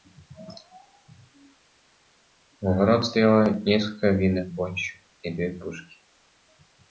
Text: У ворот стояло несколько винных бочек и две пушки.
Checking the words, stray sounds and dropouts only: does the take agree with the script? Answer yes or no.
yes